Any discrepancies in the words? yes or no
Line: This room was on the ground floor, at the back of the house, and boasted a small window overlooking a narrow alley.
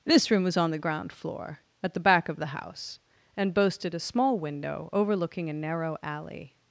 no